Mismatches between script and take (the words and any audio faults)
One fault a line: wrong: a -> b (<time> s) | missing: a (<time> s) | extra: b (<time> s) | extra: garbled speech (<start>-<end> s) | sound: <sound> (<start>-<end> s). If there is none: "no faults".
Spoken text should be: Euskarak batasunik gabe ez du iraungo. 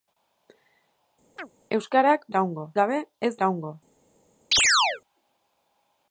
sound: chirp (1.4-1.5 s)
wrong: batasunik -> iraungo (2.3 s)
missing: du (3.3 s)
sound: chirp (4.5-5.0 s)